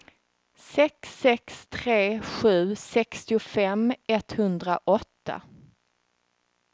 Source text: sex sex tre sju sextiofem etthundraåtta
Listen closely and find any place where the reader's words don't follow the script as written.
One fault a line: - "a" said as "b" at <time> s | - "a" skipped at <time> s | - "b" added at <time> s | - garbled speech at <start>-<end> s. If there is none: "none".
none